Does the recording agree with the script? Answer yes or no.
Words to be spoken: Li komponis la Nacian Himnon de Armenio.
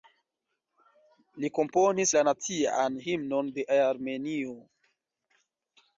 yes